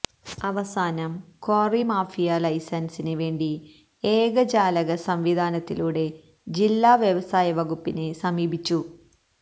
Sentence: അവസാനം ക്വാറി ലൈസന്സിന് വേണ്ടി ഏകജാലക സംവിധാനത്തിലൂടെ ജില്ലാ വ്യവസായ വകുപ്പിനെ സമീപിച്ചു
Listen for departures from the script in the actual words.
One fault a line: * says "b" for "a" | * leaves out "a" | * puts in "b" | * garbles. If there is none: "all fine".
* puts in "മാഫിയ"